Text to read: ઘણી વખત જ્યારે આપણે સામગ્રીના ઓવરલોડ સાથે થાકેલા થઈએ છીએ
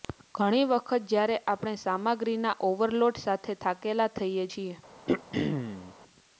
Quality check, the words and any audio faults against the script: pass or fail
fail